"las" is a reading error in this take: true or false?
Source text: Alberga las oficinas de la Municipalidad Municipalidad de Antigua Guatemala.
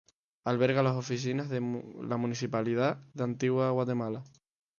false